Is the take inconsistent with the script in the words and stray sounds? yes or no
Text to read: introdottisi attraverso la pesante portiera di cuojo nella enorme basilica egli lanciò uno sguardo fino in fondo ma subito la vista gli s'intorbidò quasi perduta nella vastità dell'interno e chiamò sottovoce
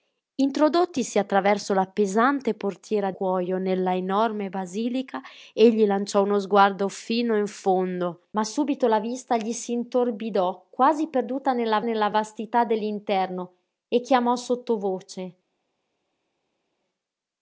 yes